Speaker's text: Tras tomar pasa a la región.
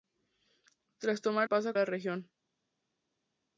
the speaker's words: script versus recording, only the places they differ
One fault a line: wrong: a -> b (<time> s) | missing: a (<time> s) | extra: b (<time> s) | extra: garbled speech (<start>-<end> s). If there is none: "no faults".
no faults